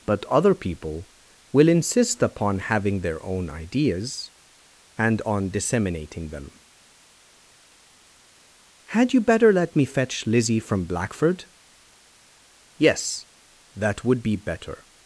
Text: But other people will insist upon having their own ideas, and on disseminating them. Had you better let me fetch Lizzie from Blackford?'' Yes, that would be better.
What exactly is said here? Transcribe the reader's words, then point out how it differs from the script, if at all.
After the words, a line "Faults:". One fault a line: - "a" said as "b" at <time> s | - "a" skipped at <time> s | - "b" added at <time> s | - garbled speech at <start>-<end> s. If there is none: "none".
But other people will insist upon having their own ideas, and on disseminating them. Had you better let me fetch Lizzie from Blackford?'' Yes, that would be better.
Faults:
none